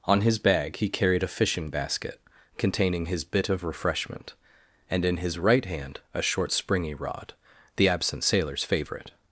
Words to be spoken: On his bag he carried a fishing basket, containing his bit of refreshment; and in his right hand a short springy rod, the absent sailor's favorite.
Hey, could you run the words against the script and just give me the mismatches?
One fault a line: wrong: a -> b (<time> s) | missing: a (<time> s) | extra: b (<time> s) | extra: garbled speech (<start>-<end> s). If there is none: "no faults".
no faults